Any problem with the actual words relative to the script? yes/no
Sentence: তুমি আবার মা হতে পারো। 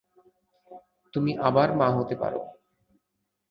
no